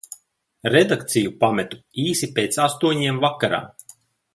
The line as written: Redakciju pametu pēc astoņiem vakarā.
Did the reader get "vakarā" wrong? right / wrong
right